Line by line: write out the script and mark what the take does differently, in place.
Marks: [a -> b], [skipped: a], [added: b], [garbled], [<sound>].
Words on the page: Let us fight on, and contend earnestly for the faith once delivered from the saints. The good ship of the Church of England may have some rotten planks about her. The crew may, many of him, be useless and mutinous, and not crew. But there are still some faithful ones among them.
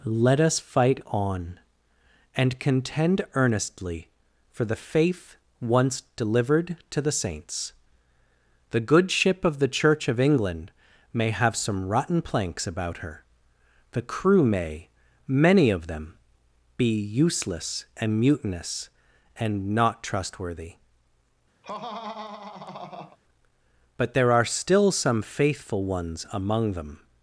Let us fight on, and contend earnestly for the faith once delivered [from -> to] the saints. The good ship of the Church of England may have some rotten planks about her. The crew may, many of [him, -> them] be useless and mutinous, and not [crew. -> trustworthy] [laugh] But there are still some faithful ones among them.